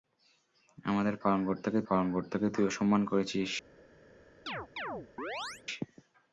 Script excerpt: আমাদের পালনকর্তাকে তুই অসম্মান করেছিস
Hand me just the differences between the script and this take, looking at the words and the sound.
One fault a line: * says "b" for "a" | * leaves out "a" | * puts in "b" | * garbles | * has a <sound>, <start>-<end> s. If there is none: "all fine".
* puts in "পালনকর্তাকে"
* has a chirp, 4.5-5.6 s